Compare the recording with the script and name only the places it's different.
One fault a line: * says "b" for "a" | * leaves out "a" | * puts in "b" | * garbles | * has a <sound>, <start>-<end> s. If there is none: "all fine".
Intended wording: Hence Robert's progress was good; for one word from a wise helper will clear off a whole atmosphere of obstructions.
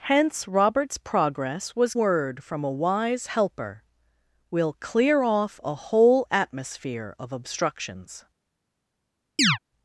* leaves out "good for one"
* has a chirp, 9.4-9.6 s